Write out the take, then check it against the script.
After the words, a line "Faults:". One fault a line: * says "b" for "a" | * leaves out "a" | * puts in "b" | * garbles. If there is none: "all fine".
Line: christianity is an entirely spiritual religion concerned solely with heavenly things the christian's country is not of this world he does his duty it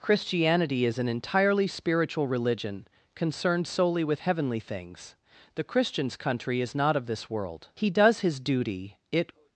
christianity is an entirely spiritual religion concerned solely with heavenly things the christian's country is not of this world he does his duty it
Faults:
all fine